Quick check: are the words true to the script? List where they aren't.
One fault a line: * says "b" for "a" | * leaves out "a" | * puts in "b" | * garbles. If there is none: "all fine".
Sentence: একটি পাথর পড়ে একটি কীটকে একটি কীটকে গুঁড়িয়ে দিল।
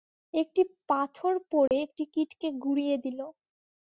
* leaves out "একটি কীটকে"